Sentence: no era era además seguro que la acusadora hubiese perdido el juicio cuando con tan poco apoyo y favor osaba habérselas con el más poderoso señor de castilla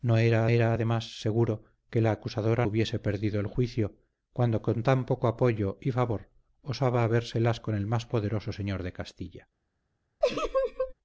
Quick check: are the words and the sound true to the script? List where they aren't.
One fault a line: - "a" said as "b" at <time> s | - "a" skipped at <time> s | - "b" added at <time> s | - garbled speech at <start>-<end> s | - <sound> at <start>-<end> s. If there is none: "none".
- laugh at 10.2-10.9 s